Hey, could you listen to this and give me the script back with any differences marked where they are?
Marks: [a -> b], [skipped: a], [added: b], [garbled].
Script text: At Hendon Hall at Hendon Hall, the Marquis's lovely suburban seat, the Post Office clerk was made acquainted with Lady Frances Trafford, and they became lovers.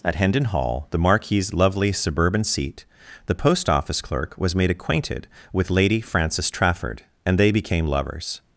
At Hendon Hall [skipped: at Hendon Hall,] the Marquis's lovely suburban seat, the Post Office clerk was made acquainted with Lady Frances Trafford, and they became lovers.